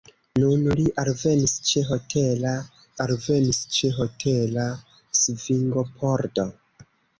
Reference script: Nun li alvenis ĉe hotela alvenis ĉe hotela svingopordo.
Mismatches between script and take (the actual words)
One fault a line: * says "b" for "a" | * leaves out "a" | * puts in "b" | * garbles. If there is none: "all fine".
all fine